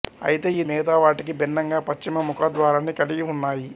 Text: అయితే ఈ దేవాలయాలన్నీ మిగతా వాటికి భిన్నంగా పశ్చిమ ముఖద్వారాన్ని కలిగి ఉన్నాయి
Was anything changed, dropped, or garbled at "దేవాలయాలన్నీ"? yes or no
yes